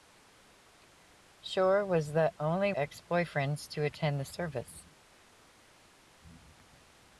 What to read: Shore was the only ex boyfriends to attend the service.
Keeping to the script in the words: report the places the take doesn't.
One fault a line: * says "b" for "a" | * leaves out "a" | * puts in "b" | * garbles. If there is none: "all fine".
all fine